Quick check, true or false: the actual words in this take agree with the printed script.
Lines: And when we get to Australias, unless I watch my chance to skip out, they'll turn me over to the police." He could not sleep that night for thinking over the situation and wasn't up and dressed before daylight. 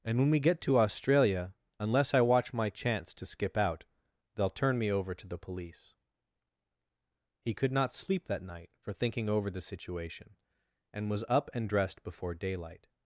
false